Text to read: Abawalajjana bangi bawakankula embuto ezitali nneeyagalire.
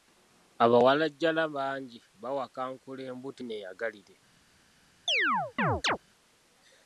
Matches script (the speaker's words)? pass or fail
fail